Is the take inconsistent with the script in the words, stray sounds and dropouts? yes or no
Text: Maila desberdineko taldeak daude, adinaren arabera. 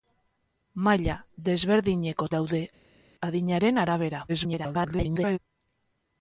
yes